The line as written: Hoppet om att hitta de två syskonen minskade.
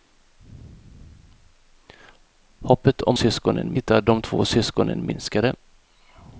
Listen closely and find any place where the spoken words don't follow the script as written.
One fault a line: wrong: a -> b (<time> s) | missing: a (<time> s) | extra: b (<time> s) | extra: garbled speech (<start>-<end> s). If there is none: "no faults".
wrong: att -> syskonen (3.1 s)